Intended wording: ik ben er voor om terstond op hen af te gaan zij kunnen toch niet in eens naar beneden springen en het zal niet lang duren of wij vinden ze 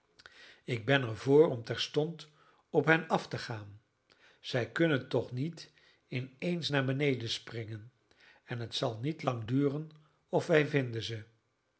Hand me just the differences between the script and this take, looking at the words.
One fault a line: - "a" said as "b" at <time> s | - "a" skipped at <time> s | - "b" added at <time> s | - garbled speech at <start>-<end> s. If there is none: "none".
none